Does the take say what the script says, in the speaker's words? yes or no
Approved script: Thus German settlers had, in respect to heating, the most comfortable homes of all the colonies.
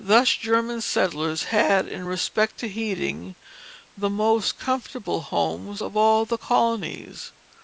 yes